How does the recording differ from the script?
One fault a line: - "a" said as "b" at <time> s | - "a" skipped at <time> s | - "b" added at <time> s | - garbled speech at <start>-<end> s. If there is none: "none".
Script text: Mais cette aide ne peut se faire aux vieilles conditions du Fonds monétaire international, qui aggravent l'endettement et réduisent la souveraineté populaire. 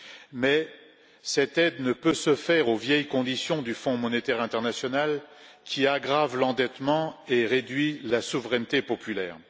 none